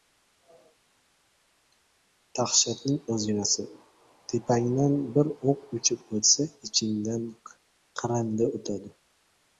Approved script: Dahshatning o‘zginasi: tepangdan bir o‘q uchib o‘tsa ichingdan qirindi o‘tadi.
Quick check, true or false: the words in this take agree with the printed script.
true